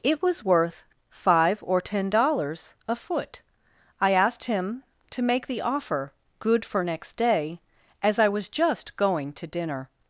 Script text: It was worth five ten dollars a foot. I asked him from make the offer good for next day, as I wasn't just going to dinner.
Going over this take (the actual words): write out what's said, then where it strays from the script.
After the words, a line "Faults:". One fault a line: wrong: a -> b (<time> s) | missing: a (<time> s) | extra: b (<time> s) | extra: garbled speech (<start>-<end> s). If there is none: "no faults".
It was worth five or ten dollars a foot. I asked him to make the offer good for next day, as I was just going to dinner.
Faults:
extra: or (1.6 s)
wrong: from -> to (5.1 s)
wrong: wasn't -> was (8.3 s)